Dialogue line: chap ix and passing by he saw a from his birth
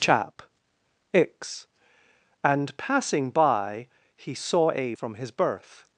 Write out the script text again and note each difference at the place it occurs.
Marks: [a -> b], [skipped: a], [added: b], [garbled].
chap ix and passing by he saw a from his birth